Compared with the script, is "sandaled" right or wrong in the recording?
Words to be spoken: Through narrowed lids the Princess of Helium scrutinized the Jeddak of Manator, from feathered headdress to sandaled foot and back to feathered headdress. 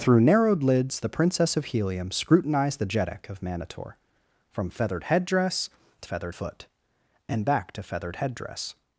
wrong